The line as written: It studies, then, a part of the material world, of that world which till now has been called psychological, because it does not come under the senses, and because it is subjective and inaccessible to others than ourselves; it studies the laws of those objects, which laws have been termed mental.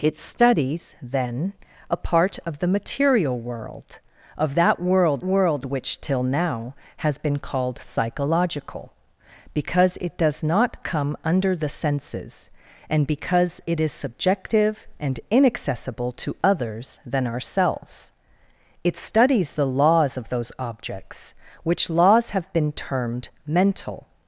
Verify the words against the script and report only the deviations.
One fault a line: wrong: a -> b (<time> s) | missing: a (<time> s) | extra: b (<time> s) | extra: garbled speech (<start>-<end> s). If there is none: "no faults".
extra: world (5.2 s)